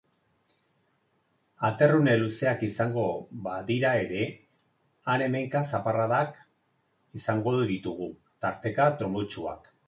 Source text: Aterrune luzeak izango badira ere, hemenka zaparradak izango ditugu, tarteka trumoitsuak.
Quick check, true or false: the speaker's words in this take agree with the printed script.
false